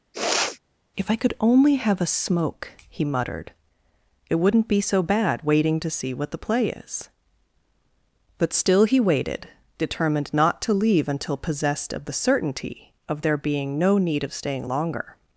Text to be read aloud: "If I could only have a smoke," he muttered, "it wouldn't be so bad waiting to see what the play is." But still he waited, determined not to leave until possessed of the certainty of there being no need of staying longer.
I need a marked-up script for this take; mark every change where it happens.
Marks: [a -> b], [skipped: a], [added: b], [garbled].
"If I could only have a smoke," he muttered, "it wouldn't be so bad waiting to see what the play is." But still he waited, determined not to leave until possessed of the certainty of there being no need of staying longer.